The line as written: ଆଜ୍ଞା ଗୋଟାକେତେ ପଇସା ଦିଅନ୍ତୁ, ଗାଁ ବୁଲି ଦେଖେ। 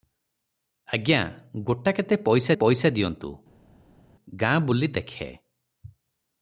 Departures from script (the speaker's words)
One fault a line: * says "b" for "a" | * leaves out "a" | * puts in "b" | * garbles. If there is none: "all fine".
* puts in "ପଇସା"